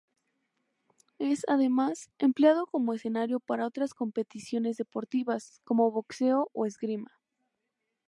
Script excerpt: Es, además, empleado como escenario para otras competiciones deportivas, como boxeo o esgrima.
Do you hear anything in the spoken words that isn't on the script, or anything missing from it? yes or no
no